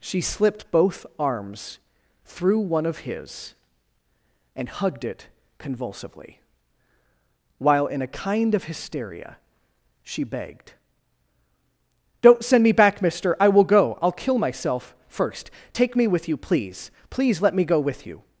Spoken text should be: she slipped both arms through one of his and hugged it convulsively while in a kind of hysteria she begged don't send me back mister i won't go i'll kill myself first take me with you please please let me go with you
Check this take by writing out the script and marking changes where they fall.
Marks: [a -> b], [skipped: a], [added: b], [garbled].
she slipped both arms through one of his and hugged it convulsively while in a kind of hysteria she begged don't send me back mister i [won't -> will] go i'll kill myself first take me with you please please let me go with you